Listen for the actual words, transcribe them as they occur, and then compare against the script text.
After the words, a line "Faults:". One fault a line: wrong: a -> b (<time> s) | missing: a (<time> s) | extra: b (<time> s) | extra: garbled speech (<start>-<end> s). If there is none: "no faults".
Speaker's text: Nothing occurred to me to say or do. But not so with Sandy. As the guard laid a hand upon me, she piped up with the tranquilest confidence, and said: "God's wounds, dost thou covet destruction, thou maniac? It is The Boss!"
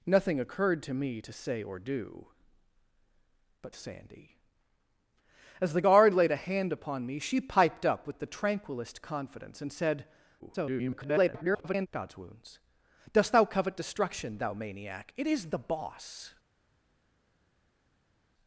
Nothing occurred to me to say or do. But Sandy. As the guard laid a hand upon me, she piped up with the tranquilest confidence, and said: [garbled] "God's wounds, dost thou covet destruction, thou maniac? It is The Boss!"
Faults:
missing: not so with (3.8 s)
extra: garbled speech (10.4-11.9 s)